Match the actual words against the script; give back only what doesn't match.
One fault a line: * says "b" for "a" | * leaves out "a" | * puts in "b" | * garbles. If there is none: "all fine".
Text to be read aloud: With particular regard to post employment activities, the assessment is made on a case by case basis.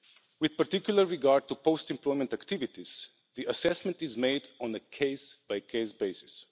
all fine